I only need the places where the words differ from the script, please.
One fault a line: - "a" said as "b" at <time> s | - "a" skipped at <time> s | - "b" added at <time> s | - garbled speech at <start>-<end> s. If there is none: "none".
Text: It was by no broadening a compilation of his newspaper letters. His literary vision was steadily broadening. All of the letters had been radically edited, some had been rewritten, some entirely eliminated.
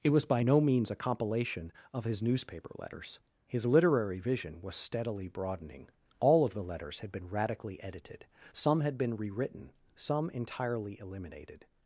- "broadening" said as "means" at 0.6 s